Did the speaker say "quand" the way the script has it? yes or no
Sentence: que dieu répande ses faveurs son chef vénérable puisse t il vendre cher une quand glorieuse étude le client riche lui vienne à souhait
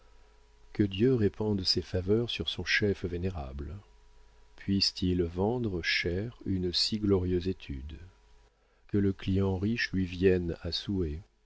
no